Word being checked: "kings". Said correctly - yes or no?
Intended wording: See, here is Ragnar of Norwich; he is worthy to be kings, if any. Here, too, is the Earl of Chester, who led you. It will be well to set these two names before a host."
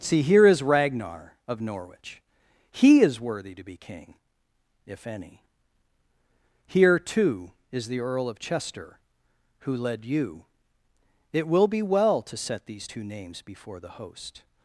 no